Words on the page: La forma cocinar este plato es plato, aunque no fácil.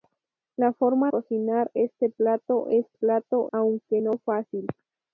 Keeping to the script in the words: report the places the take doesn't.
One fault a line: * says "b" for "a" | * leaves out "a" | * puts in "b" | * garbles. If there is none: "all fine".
all fine